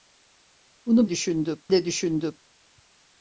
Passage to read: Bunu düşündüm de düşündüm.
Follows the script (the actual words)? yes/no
yes